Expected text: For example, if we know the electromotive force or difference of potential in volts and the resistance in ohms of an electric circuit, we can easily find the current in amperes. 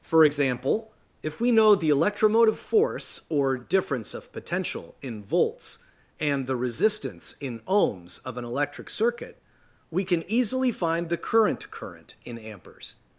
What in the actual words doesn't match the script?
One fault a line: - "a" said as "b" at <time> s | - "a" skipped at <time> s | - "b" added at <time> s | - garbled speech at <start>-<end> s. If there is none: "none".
- "current" added at 11.7 s